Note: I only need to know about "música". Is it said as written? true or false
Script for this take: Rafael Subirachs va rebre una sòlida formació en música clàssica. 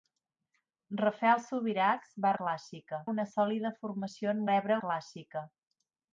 false